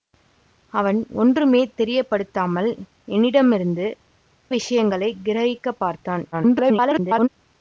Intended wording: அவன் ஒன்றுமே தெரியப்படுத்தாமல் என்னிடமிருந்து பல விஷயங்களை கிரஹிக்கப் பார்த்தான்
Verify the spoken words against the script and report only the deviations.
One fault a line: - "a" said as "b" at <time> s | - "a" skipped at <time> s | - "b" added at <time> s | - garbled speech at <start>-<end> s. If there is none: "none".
- "பல" skipped at 3.9 s
- garbled speech at 6.3-7.3 s